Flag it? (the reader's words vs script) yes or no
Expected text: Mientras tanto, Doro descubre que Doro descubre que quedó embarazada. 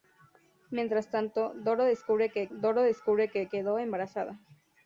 no